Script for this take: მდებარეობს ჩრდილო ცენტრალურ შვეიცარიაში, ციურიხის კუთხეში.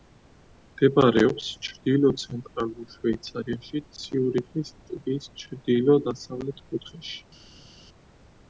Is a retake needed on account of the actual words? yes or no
yes